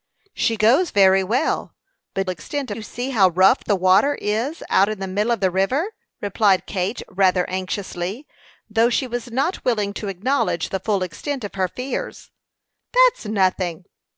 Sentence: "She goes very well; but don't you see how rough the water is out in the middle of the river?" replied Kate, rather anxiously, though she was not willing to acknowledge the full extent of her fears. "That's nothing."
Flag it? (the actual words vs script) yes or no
yes